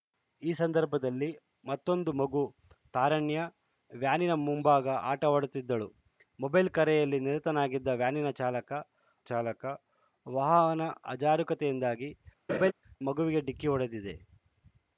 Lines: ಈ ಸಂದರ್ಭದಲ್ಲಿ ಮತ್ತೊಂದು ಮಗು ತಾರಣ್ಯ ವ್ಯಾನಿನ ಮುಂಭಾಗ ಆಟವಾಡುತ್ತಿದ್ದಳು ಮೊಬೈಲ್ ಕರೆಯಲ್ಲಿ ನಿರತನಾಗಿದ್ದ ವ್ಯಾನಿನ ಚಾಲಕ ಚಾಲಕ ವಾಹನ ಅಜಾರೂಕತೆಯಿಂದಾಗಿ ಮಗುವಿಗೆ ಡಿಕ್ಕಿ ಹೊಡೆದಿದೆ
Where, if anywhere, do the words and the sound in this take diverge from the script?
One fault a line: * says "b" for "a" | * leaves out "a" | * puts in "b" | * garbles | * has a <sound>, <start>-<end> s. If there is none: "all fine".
* has a laugh, 12.5-12.7 s